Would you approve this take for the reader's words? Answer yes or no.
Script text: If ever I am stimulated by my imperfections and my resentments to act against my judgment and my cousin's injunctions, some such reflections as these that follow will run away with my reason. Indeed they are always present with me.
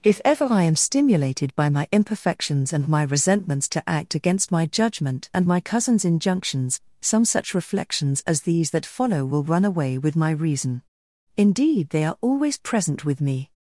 yes